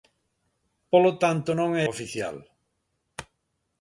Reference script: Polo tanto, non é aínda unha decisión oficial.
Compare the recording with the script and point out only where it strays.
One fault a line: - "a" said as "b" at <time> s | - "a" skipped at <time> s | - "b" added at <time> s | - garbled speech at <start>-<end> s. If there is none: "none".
- "aínda unha decisión" skipped at 1.9 s